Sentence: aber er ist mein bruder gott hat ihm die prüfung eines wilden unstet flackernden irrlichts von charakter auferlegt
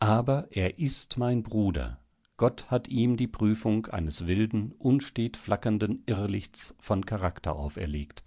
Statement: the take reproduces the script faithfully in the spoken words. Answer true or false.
true